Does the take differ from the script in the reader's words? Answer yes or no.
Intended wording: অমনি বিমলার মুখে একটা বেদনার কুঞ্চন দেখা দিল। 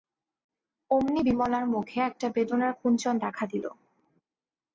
no